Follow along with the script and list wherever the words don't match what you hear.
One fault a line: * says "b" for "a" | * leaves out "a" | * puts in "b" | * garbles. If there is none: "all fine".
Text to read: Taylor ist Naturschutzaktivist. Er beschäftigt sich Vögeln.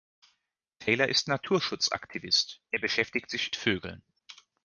all fine